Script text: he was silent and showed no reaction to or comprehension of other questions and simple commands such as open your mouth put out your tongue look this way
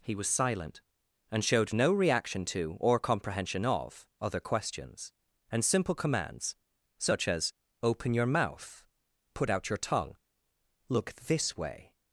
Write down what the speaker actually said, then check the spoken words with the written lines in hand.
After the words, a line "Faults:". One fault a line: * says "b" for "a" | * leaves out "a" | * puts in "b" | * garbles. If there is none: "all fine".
he was silent and showed no reaction to or comprehension of other questions and simple commands such as open your mouth put out your tongue look this way
Faults:
all fine